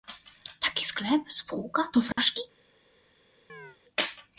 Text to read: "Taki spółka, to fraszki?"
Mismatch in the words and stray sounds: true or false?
true